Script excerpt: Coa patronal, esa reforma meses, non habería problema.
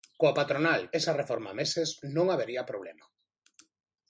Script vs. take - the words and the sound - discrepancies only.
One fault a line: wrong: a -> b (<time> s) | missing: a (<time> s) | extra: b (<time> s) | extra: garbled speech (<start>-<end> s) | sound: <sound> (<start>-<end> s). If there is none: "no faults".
no faults